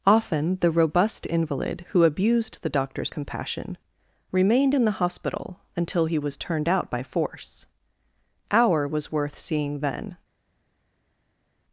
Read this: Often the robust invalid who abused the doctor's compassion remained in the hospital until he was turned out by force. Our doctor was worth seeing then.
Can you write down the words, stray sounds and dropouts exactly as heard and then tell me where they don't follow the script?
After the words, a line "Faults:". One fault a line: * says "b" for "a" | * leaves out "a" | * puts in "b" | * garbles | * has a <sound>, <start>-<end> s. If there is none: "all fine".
Often the robust invalid who abused the doctor's compassion remained in the hospital until he was turned out by force. Our was worth seeing then.
Faults:
* leaves out "doctor"